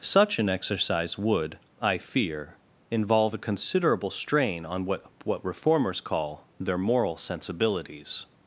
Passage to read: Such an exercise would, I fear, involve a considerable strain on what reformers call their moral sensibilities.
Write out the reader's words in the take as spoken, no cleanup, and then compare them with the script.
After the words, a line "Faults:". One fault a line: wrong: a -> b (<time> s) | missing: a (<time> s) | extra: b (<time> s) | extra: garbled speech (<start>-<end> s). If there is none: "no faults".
Such an exercise would, I fear, involve a considerable strain on what what reformers call their moral sensibilities.
Faults:
extra: what (5.2 s)